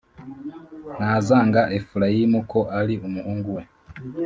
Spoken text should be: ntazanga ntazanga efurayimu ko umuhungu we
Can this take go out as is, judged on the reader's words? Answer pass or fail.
fail